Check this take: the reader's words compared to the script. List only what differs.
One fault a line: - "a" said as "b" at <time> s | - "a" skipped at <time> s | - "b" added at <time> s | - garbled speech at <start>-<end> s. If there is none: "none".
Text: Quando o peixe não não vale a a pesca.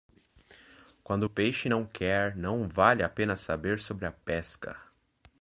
- "quer" added at 1.8 s
- "pena saber sobre" added at 3.1 s